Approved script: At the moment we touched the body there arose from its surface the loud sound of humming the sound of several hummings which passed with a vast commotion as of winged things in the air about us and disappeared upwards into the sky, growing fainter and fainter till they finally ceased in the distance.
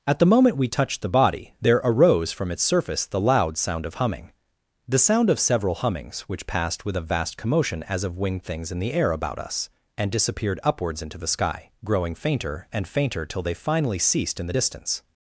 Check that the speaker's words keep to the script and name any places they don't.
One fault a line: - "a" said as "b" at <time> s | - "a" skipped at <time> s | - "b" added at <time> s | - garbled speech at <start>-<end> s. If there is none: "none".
none